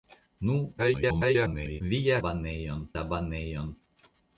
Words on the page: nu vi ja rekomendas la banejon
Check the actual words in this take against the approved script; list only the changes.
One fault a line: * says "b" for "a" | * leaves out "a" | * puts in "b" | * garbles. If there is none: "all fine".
* garbles
* says "banejon" for "rekomendas"